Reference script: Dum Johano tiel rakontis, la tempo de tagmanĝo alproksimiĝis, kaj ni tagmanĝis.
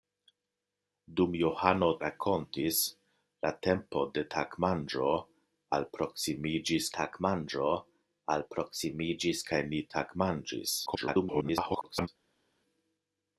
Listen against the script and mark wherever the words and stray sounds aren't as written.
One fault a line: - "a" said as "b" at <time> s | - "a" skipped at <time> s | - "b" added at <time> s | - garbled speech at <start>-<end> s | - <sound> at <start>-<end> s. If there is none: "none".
- "tiel" skipped at 1.9 s
- "tagmanĝo alproksimiĝis" added at 7.0 s
- garbled speech at 10.9-12.1 s